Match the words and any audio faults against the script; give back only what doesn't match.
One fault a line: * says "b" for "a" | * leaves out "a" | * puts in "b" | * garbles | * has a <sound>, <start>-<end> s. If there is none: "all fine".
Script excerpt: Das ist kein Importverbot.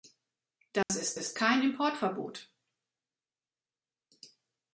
* has a dropout, 0.8-0.9 s
* puts in "ist"